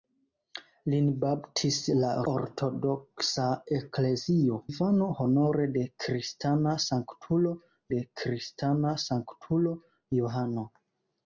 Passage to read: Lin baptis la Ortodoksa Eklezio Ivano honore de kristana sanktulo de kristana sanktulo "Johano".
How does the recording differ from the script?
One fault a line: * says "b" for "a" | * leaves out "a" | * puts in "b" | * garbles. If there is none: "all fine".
all fine